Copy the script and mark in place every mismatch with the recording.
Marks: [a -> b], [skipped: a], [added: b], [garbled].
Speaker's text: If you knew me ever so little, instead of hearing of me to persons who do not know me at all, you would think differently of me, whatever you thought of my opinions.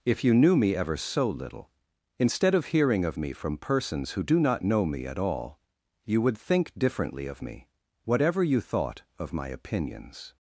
If you knew me ever so little, instead of hearing of me [to -> from] persons who do not know me at all, you would think differently of me, whatever you thought of my opinions.